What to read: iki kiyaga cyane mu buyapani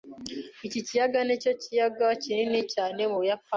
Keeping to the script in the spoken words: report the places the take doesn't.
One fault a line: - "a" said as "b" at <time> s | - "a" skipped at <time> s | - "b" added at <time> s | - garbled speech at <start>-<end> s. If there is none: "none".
- "nicyo kiyaga kinini" added at 1.3 s